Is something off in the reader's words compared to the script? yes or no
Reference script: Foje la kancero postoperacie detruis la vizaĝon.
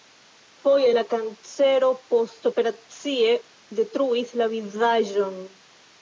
no